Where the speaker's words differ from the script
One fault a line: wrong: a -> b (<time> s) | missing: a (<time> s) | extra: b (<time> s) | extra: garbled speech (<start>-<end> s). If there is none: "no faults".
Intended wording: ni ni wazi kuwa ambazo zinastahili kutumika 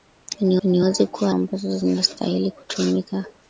no faults